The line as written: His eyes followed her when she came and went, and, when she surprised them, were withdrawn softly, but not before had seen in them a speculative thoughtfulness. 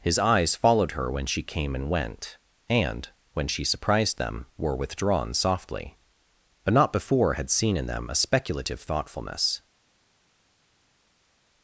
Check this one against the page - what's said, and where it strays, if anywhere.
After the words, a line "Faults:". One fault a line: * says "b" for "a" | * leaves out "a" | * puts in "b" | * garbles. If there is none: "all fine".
His eyes followed her when she came and went, and, when she surprised them, were withdrawn softly, but not before had seen in them a speculative thoughtfulness.
Faults:
all fine